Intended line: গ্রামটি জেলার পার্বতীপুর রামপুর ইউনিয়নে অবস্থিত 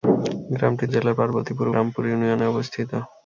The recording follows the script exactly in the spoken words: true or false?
true